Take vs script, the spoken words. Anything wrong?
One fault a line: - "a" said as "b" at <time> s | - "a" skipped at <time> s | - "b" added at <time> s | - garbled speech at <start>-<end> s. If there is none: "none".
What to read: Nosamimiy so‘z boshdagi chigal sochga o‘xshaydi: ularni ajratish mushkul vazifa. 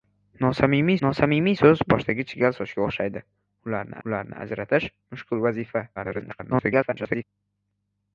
- "nosamimiy" added at 1.0 s
- "ularni" added at 4.1 s
- garbled speech at 6.0-7.2 s